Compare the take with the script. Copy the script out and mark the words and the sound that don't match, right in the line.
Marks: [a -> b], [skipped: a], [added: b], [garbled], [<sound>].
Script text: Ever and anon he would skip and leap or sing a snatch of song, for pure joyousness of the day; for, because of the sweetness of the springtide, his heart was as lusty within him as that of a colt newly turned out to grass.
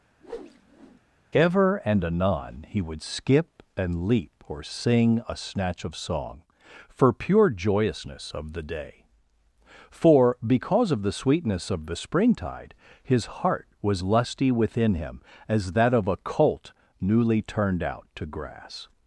[whoosh] Ever and anon he would skip and leap or sing a snatch of song, for pure joyousness of the day; for, because of the sweetness of the springtide, his heart was [skipped: as] lusty within him as that of a colt newly turned out to grass.